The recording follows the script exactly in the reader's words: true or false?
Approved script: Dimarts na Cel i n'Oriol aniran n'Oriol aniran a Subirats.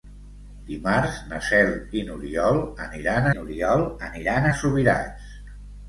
true